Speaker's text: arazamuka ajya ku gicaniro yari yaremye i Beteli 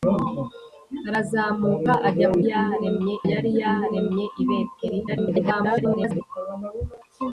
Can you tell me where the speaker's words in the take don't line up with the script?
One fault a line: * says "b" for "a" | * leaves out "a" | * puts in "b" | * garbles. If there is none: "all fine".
* says "yaremye" for "gicaniro"
* garbles